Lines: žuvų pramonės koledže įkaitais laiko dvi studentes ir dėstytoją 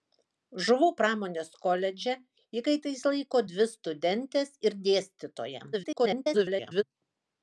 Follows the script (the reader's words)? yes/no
no